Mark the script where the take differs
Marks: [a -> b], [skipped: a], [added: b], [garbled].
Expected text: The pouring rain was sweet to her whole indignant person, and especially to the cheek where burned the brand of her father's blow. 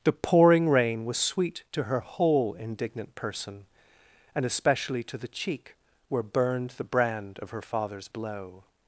The pouring rain was sweet to her whole indignant person, and especially to the cheek where burned the brand of her father's blow.